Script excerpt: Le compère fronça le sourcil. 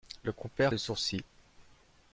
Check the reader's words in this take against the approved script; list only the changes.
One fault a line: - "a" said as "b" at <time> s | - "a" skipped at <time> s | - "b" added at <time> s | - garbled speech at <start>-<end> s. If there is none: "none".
- "fronça" skipped at 0.7 s